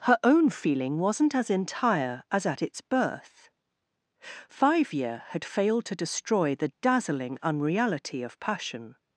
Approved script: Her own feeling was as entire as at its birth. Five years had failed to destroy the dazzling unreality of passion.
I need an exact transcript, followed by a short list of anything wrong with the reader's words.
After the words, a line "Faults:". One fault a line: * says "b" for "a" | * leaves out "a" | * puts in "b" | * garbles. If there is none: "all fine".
Her own feeling wasn't as entire as at its birth. Five year had failed to destroy the dazzling unreality of passion.
Faults:
* says "wasn't" for "was"
* says "year" for "years"